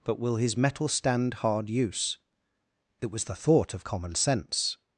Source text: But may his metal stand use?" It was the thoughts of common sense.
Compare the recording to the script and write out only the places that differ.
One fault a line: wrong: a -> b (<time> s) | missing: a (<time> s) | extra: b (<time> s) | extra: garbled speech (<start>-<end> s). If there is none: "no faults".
wrong: may -> will (0.2 s)
extra: hard (1.4 s)
wrong: thoughts -> thought (3.4 s)